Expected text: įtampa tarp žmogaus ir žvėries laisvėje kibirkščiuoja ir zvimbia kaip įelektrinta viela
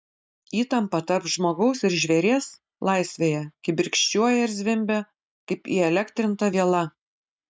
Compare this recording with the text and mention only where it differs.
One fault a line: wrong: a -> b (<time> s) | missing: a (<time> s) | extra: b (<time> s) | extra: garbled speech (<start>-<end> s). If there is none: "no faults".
no faults